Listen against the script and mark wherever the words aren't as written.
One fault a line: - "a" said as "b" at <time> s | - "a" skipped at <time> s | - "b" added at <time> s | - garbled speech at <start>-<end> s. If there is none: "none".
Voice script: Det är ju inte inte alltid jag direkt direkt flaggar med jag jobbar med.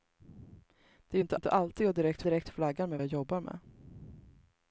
none